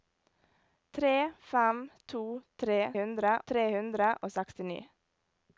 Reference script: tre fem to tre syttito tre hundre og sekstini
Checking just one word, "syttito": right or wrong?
wrong